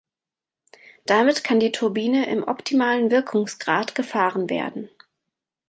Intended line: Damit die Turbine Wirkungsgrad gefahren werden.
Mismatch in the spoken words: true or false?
true